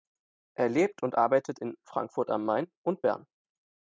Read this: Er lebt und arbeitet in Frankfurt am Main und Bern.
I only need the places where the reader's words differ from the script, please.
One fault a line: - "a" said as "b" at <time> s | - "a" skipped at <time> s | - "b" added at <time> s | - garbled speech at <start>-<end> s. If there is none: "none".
none